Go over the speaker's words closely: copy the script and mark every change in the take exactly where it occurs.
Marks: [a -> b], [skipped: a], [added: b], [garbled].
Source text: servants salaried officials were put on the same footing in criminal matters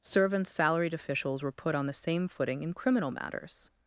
servants salaried officials were put on the same footing in criminal matters